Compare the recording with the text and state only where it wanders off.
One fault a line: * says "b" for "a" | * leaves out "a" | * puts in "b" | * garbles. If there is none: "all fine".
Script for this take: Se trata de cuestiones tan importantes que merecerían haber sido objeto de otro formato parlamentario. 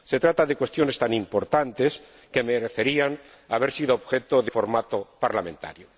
* leaves out "otro"